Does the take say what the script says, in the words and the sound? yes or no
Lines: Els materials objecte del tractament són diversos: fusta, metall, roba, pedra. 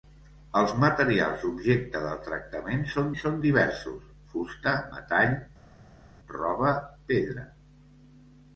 no